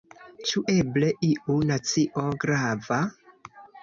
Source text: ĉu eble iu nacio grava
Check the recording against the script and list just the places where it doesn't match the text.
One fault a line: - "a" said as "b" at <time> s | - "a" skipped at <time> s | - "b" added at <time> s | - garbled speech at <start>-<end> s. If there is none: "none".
none